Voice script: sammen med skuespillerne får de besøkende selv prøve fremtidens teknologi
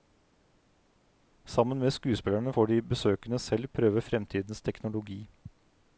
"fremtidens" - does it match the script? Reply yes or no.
yes